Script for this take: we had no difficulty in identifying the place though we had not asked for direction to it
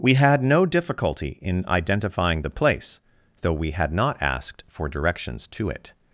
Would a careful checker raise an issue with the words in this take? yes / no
yes